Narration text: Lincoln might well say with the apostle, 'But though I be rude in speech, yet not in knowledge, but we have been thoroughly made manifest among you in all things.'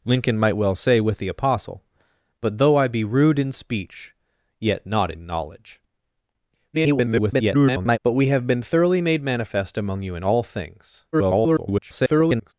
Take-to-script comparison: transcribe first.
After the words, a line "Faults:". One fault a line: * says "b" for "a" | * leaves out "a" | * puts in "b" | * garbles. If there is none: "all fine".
Lincoln might well say with the apostle, 'But though I be rude in speech, yet not in knowledge, [garbled] but we have been thoroughly made manifest among you in all things.' [garbled]
Faults:
* garbles
* garbles